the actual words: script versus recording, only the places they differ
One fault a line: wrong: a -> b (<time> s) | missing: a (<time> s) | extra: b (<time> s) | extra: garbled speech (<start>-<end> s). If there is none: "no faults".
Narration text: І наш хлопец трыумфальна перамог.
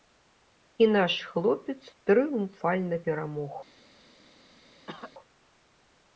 no faults